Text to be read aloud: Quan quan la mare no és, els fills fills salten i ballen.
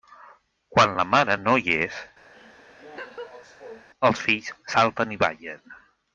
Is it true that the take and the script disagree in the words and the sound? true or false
true